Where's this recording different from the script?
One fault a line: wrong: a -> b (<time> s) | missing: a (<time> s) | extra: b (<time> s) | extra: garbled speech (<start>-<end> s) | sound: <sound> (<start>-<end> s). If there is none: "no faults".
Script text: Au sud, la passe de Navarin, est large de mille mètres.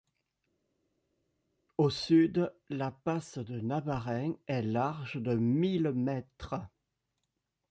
no faults